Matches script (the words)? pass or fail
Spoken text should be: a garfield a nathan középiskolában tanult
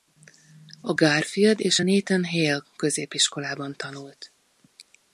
fail